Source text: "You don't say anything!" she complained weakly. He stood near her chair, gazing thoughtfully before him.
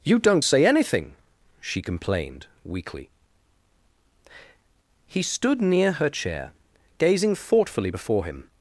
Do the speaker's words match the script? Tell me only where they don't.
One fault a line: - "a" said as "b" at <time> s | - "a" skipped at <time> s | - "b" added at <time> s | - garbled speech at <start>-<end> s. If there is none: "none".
none